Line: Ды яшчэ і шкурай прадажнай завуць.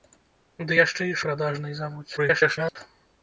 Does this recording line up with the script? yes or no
no